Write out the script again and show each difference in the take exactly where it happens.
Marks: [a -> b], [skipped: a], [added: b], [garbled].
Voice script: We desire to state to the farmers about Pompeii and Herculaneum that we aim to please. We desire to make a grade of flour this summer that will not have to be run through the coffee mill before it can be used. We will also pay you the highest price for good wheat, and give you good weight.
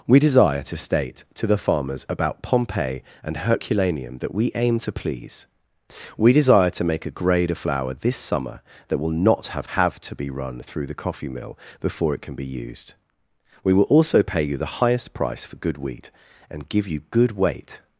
We desire to state to the farmers about Pompeii and Herculaneum that we aim to please. We desire to make a grade of flour this summer that will not have [added: have] to be run through the coffee mill before it can be used. We will also pay you the highest price for good wheat, and give you good weight.